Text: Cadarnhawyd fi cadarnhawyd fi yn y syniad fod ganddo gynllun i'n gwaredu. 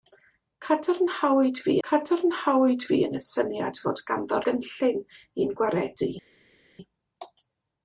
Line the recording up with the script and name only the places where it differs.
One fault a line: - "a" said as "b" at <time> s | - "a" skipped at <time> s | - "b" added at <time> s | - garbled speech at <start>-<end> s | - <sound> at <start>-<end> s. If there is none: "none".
none